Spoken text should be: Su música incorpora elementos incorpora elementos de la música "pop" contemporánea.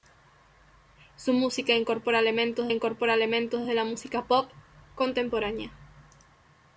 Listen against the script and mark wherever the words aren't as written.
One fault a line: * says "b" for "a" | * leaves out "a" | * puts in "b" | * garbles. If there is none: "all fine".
all fine